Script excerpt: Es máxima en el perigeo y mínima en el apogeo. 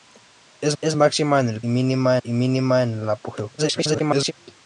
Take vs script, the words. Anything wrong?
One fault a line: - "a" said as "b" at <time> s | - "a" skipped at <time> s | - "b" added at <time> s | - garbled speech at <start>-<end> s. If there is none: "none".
- "es" added at 0.8 s
- "perigeo" said as "mínima" at 1.7 s
- garbled speech at 3.6-4.3 s